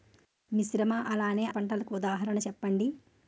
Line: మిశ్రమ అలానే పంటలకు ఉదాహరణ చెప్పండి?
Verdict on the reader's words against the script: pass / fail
pass